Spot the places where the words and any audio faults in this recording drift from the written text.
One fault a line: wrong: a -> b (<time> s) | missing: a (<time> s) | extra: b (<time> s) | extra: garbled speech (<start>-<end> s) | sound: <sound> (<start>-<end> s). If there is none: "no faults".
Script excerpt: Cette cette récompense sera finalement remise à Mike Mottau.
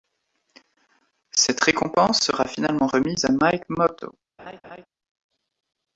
missing: cette (1.6 s)
sound: laugh (4.4-4.9 s)